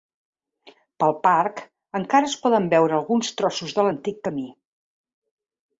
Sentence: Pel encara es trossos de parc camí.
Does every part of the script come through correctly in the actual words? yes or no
no